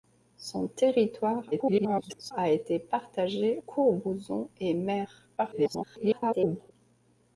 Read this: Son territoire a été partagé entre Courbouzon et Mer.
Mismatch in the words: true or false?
true